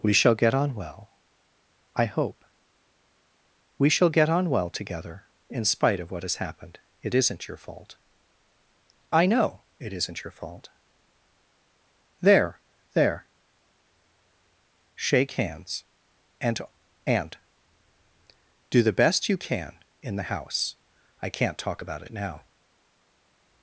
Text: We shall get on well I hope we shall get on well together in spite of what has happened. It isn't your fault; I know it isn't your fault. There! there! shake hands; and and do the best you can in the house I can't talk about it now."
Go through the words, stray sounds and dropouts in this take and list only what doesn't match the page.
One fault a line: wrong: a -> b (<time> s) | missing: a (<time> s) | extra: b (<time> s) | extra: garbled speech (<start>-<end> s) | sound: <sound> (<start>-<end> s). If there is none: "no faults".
no faults